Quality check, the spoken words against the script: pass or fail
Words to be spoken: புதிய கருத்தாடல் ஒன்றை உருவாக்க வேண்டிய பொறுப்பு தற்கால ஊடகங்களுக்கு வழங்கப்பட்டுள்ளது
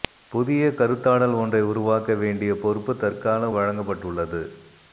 fail